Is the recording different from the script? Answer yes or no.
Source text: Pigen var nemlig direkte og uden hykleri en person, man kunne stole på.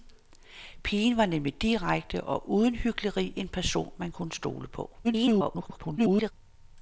yes